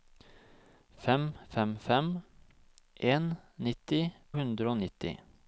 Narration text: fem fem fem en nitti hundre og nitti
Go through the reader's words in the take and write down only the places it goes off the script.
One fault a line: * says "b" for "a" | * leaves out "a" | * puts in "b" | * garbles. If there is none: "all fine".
all fine